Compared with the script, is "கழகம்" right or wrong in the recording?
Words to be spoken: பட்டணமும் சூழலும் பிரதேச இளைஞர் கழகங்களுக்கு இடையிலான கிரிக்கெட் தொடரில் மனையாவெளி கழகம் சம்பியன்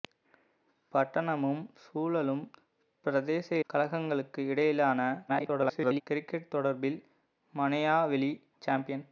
wrong